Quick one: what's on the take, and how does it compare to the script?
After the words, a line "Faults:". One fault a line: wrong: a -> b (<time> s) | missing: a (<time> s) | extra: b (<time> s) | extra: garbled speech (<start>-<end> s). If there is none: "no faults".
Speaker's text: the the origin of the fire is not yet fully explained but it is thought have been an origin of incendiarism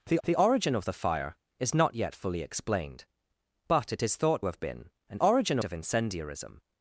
the the origin of the fire is not yet fully explained but it is thought have been an origin of incendiarism
Faults:
no faults